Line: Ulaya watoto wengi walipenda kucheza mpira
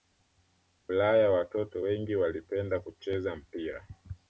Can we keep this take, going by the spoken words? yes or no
yes